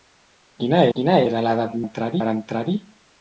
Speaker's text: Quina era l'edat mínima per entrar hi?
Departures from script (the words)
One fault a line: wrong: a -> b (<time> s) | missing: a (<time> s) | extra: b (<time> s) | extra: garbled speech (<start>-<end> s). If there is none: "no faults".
extra: quina (1.0 s)
wrong: mínima -> entrar (1.8 s)